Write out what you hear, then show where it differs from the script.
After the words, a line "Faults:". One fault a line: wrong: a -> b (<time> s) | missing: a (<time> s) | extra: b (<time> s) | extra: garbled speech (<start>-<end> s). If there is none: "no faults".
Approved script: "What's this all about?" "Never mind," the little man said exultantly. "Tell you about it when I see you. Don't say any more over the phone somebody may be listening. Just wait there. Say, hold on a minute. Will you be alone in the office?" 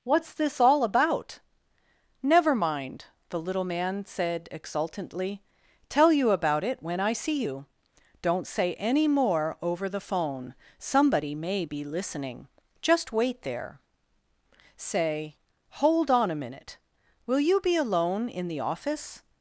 "What's this all about?" "Never mind," the little man said exultantly. "Tell you about it when I see you. Don't say any more over the phone somebody may be listening. Just wait there. Say, hold on a minute. Will you be alone in the office?"
Faults:
no faults